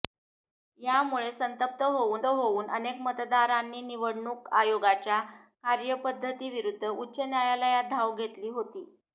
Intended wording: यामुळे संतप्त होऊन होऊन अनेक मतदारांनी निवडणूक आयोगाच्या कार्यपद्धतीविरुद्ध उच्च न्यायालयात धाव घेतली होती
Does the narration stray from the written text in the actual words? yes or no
no